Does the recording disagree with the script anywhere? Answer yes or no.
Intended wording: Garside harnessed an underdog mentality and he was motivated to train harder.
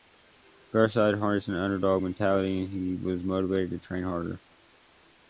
no